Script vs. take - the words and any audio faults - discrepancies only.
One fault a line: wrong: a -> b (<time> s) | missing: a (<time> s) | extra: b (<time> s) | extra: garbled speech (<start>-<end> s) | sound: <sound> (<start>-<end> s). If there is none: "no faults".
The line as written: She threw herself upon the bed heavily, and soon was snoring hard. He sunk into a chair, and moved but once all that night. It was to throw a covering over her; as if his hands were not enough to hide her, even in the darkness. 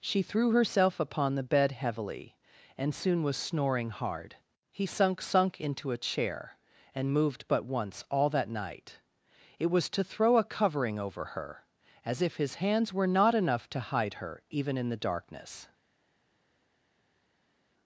extra: sunk (5.2 s)